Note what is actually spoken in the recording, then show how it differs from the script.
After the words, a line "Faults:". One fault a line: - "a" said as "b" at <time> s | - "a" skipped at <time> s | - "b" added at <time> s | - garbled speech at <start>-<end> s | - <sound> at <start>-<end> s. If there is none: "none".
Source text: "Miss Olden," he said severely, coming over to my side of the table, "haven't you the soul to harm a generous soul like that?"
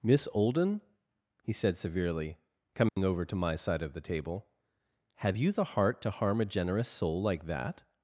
"Miss Olden," he said severely, coming over to my side of the table, "have you the heart to harm a generous soul like that?"
Faults:
- dropout at 2.9-3.0 s
- "haven't" said as "have" at 5.2 s
- "soul" said as "heart" at 5.8 s